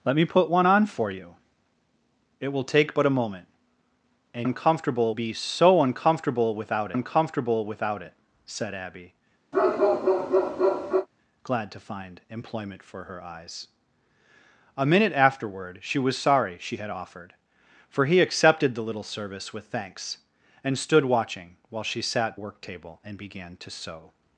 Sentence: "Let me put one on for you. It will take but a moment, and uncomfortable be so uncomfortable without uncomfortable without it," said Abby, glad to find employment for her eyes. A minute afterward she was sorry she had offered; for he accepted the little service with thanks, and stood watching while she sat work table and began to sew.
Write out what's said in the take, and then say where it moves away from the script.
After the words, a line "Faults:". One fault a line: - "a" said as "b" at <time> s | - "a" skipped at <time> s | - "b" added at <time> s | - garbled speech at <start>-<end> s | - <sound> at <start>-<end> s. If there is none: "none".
"Let me put one on for you. It will take but a moment, and uncomfortable be so uncomfortable without uncomfortable without it," said Abby, glad to find employment for her eyes. A minute afterward she was sorry she had offered; for he accepted the little service with thanks, and stood watching while she sat work table and began to sew.
Faults:
- bark at 9.5-11.1 s